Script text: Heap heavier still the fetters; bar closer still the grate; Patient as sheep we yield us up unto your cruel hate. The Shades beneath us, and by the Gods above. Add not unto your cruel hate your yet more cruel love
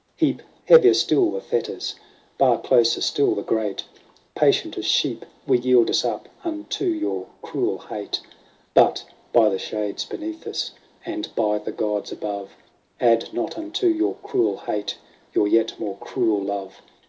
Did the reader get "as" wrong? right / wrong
right